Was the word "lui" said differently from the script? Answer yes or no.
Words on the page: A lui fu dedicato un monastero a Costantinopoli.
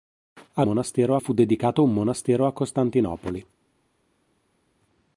yes